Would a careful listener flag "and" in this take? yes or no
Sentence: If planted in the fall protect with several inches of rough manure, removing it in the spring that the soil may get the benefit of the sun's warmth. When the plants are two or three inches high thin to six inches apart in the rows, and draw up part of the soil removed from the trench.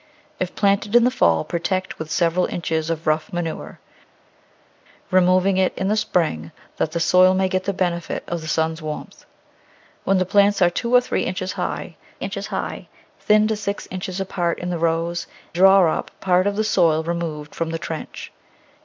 yes